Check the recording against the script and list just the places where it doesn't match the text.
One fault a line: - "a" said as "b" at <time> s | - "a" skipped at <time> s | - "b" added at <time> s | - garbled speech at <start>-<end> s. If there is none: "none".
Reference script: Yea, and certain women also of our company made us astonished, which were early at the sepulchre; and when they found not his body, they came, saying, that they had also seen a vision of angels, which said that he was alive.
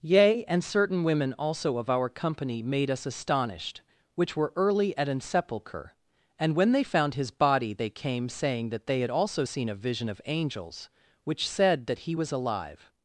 - "the" said as "an" at 5.1 s
- "not" skipped at 7.1 s